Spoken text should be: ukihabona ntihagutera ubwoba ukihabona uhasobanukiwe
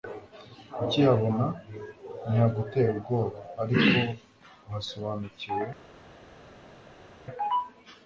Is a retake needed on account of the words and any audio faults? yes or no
yes